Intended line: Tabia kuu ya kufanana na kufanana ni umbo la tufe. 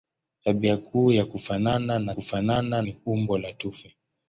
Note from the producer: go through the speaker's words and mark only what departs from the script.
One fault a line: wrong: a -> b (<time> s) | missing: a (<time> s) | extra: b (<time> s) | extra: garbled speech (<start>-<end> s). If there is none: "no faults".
no faults